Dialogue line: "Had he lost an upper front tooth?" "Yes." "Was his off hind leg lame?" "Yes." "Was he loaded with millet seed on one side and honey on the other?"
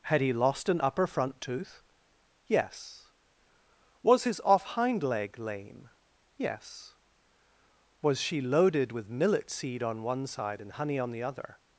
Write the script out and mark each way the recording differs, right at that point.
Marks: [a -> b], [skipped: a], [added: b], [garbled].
"Had he lost an upper front tooth?" "Yes." "Was his off hind leg lame?" "Yes." "Was [he -> she] loaded with millet seed on one side and honey on the other?"